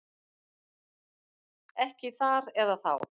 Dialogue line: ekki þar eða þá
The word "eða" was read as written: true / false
true